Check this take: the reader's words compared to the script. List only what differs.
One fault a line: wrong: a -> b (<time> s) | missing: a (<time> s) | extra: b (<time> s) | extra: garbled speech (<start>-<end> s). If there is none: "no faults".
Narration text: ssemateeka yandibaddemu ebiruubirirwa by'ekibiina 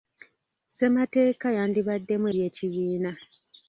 missing: ebiruubirirwa (2.2 s)